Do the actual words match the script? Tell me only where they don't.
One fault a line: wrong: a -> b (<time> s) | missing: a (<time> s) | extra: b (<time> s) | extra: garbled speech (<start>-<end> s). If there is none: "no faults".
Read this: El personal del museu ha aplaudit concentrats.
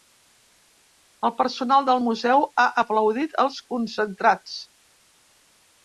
extra: els (3.5 s)